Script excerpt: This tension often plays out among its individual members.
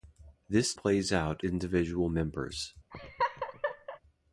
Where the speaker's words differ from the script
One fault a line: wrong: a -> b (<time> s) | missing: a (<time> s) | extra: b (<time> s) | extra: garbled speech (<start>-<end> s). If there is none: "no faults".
missing: tension often (0.7 s)
missing: among its (1.4 s)